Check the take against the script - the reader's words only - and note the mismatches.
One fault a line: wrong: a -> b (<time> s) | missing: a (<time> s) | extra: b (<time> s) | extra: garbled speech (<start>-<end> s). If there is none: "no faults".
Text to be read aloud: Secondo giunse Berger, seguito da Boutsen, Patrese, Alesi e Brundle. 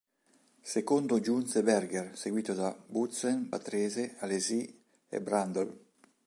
no faults